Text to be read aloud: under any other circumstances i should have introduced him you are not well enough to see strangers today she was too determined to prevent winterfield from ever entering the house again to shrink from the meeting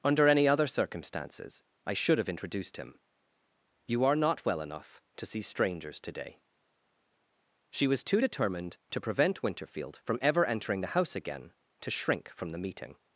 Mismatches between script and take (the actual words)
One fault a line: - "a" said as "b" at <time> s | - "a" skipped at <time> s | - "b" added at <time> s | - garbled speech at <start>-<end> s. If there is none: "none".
none